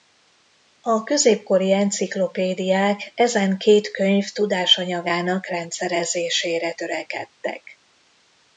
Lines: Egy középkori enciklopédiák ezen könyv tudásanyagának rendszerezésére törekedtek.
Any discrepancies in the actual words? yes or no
yes